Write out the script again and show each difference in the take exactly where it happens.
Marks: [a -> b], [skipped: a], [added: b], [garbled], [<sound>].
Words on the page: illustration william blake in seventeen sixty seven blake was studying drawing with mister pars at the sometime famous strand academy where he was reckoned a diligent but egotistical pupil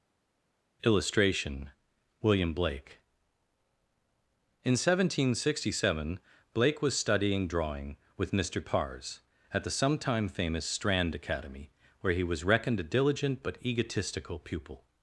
illustration william blake in seventeen sixty seven blake was studying drawing with mister pars at the sometime famous strand academy where he was reckoned a diligent but egotistical pupil